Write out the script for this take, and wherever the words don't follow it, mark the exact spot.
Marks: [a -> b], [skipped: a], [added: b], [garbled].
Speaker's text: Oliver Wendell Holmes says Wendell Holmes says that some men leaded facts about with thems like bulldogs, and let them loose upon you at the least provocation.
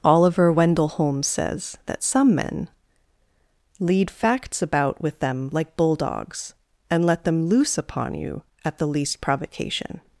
Oliver Wendell Holmes says [skipped: Wendell Holmes says] that some men [leaded -> lead] facts about with [thems -> them] like bulldogs, and let them loose upon you at the least provocation.